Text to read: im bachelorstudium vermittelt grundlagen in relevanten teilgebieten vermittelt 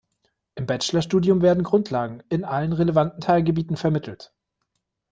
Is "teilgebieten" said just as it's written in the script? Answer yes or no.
yes